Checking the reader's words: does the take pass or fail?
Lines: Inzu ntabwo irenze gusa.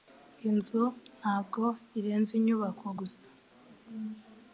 fail